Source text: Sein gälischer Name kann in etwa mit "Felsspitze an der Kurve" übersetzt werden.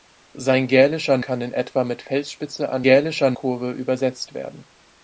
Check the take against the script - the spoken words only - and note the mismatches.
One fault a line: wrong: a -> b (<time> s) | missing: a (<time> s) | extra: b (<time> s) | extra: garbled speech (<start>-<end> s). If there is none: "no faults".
missing: Name (1.2 s)
wrong: der -> gälischer (2.8 s)